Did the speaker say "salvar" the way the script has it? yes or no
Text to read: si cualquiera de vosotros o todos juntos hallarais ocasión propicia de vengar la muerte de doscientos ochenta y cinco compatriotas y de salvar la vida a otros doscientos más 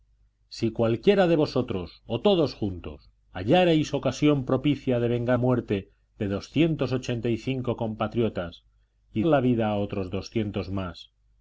no